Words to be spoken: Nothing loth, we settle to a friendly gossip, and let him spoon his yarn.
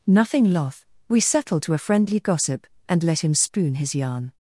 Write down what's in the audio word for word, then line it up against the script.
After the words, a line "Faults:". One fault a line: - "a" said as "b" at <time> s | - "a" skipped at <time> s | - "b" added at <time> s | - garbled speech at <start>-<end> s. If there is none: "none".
Nothing loth, we settle to a friendly gossip, and let him spoon his yarn.
Faults:
none